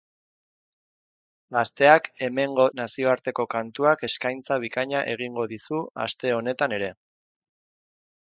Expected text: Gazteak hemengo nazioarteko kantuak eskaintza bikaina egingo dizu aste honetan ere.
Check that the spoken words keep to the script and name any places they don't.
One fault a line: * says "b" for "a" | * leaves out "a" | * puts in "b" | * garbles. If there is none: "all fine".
all fine